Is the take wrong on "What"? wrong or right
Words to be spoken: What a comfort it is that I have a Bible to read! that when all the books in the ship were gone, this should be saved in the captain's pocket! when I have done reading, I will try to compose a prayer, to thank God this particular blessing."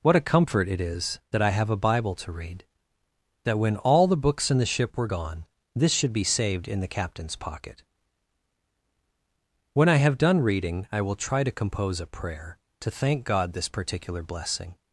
right